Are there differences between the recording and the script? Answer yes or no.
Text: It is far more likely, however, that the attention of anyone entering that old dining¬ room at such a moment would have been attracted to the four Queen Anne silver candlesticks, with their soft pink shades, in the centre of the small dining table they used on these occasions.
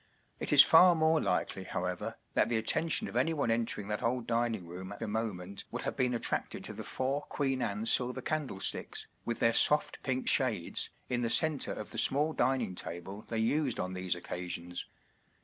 yes